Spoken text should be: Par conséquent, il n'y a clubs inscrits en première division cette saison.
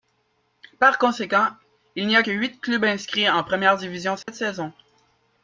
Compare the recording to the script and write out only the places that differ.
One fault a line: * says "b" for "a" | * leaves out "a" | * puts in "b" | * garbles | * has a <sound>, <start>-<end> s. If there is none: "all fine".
* puts in "que huit"
* has a dropout, 4.2-4.3 s